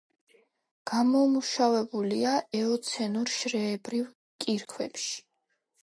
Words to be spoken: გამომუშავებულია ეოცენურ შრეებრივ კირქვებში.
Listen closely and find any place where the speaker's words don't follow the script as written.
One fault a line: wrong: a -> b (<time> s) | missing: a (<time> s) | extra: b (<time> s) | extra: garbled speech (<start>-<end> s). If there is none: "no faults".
no faults